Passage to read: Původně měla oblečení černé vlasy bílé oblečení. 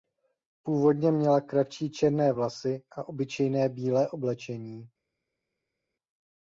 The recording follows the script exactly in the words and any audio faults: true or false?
false